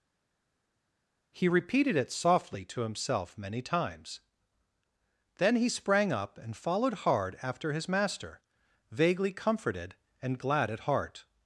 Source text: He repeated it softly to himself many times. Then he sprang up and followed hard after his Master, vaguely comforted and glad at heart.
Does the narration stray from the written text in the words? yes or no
no